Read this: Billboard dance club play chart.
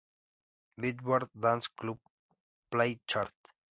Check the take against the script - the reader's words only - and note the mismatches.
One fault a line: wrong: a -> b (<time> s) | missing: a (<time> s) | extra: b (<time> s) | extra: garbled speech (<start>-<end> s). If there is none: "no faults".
no faults